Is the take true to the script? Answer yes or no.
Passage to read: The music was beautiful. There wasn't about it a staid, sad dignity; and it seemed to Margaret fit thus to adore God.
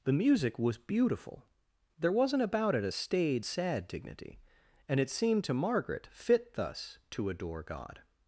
yes